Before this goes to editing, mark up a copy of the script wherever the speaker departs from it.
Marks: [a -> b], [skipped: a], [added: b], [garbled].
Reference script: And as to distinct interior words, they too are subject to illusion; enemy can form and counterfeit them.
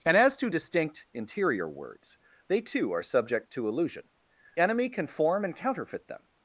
And as to distinct interior words, they too are subject to illusion; enemy can form and counterfeit them.